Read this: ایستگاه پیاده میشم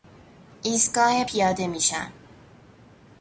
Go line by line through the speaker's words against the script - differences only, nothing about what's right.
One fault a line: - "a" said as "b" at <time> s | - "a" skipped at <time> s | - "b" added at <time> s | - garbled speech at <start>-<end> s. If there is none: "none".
none